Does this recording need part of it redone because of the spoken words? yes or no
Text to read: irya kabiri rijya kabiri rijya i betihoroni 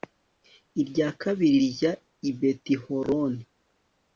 yes